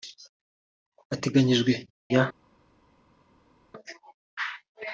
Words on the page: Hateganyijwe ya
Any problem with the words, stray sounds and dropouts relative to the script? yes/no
no